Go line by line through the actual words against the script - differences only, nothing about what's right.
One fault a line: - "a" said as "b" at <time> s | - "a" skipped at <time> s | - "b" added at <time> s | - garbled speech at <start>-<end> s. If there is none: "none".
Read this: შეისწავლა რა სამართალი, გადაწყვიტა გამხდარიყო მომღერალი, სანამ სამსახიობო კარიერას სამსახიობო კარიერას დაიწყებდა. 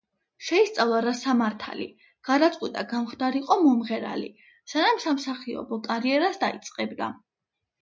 - "სამსახიობო კარიერას" skipped at 6.4 s